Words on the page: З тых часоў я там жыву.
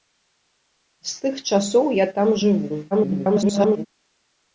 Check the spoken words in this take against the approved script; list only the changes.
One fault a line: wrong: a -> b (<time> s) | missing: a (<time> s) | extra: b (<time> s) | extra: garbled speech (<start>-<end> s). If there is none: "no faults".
extra: garbled speech (2.9-3.9 s)